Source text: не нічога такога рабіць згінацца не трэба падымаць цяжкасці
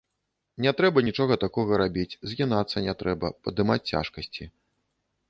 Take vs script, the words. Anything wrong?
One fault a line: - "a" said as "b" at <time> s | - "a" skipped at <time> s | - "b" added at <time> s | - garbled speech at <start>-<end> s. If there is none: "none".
- "трэба" added at 0.8 s